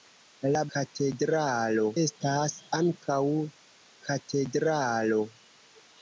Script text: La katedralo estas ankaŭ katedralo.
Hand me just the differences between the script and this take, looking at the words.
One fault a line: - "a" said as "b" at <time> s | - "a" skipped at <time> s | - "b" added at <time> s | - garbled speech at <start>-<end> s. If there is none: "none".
none